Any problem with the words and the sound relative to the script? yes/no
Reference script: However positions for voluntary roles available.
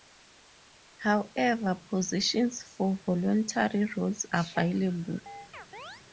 yes